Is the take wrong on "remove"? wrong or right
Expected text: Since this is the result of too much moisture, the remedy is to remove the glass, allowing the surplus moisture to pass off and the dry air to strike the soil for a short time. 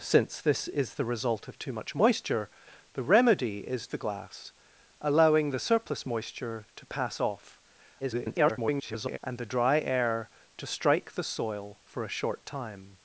wrong